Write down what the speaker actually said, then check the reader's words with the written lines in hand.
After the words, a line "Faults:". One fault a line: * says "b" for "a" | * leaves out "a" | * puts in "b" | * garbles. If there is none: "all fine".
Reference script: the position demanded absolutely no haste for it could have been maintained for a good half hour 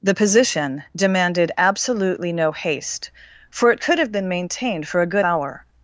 the position demanded absolutely no haste for it could have been maintained for a good hour
Faults:
* leaves out "half"